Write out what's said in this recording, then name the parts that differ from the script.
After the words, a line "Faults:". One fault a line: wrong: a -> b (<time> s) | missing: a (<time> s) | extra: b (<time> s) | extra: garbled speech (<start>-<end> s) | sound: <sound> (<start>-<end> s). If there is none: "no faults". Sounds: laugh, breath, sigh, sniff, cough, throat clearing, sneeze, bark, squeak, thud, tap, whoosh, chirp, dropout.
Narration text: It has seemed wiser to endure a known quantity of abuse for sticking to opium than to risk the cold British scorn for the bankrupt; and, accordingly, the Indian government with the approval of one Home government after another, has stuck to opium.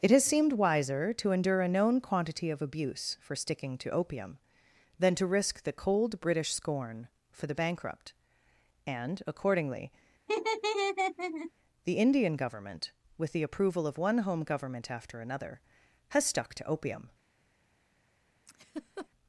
It has seemed wiser to endure a known quantity of abuse for sticking to opium than to risk the cold British scorn for the bankrupt; and, accordingly, the Indian government with the approval of one Home government after another, has stuck to opium.
Faults:
sound: laugh (10.3-11.5 s)
sound: laugh (18.5-19.1 s)